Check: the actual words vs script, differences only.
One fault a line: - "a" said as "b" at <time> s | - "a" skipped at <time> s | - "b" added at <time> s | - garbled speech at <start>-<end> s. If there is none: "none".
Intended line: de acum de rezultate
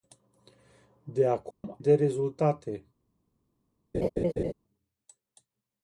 none